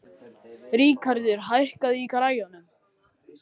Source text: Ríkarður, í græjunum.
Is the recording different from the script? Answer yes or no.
yes